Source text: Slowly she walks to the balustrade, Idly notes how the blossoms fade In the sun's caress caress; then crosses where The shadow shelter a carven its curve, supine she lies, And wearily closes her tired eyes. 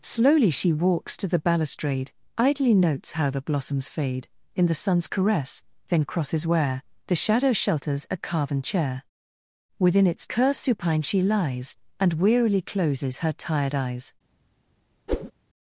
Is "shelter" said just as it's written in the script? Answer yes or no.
no